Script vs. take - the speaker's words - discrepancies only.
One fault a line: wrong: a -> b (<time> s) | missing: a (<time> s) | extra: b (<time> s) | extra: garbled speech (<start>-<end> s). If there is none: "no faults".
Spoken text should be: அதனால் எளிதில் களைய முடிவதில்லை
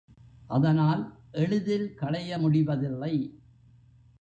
no faults